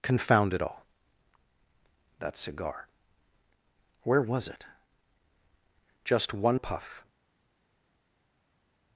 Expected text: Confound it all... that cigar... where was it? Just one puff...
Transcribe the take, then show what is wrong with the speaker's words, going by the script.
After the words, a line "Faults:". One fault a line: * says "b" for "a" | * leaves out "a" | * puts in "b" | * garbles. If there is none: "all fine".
Confound it all... that cigar... where was it? Just one puff...
Faults:
all fine